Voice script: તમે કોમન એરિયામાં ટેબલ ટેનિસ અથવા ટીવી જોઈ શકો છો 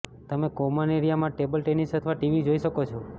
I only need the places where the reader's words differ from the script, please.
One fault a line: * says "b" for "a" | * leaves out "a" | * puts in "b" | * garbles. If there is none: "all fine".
all fine